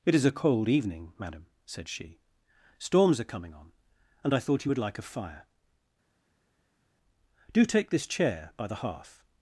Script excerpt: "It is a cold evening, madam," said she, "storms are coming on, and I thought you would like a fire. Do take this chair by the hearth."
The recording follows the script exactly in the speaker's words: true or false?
true